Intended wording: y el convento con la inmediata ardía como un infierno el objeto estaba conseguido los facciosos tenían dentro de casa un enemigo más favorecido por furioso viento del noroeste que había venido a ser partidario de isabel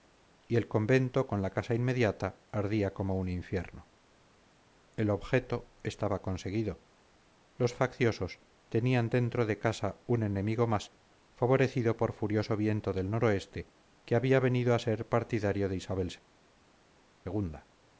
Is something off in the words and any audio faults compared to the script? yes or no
yes